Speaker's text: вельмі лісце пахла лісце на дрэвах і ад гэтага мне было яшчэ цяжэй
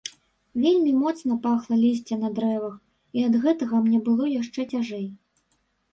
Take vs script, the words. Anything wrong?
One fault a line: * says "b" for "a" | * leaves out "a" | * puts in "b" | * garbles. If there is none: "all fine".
* says "моцна" for "лісце"